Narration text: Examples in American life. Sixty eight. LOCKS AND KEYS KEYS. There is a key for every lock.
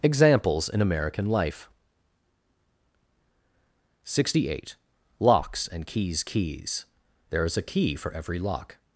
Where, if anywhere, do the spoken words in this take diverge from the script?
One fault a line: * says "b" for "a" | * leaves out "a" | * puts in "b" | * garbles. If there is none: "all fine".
all fine